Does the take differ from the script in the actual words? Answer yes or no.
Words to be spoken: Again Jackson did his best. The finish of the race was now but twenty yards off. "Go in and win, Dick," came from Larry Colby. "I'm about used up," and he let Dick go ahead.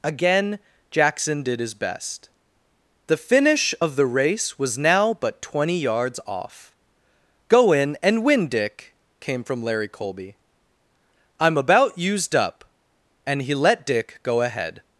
no